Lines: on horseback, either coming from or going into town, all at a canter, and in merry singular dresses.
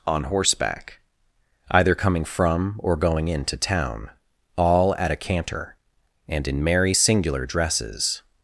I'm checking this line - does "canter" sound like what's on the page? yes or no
yes